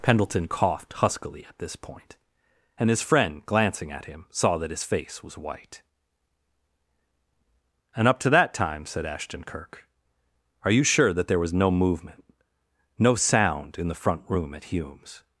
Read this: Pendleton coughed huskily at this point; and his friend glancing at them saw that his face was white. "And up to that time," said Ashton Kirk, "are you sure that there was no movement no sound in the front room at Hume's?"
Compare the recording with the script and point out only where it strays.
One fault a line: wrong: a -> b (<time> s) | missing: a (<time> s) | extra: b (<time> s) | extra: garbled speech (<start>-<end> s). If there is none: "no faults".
wrong: them -> him (4.0 s)